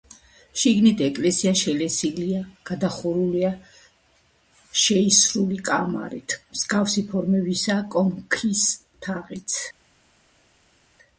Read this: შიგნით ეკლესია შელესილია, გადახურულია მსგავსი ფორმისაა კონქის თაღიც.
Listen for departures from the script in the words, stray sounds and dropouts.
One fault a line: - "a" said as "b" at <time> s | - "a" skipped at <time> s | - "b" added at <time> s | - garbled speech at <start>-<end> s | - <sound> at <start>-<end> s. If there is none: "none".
- "შეისრული კამარით" added at 4.8 s